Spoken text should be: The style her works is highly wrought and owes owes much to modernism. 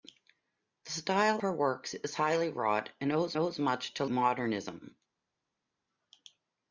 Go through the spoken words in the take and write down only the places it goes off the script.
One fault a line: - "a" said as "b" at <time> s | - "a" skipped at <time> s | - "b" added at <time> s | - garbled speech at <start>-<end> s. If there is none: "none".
none